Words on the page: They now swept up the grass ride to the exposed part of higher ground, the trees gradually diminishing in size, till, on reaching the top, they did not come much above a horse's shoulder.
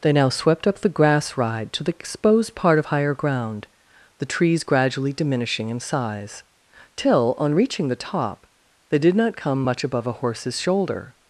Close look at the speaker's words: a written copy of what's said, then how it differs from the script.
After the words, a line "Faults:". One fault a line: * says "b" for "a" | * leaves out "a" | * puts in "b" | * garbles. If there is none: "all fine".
They now swept up the grass ride to the exposed part of higher ground, the trees gradually diminishing in size, till, on reaching the top, they did not come much above a horse's shoulder.
Faults:
all fine